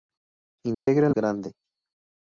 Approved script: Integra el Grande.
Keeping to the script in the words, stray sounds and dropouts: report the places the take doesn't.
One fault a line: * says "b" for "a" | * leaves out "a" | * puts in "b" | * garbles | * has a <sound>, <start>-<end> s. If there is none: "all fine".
* has a dropout, 0.7-0.9 s